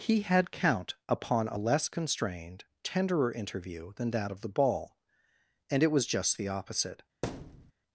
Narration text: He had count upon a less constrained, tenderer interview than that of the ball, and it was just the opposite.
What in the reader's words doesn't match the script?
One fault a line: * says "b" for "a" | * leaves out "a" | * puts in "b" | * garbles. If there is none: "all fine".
all fine